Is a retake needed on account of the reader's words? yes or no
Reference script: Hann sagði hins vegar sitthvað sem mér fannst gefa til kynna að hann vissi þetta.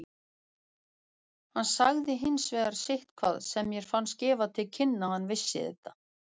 no